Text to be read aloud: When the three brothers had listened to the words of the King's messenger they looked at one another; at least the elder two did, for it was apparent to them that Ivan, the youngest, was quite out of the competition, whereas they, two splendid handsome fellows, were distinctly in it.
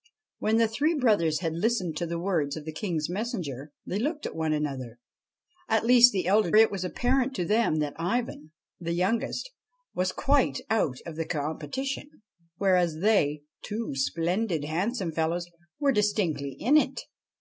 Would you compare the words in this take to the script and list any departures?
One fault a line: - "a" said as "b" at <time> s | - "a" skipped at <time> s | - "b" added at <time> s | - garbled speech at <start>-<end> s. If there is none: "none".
- "two did for" skipped at 6.5 s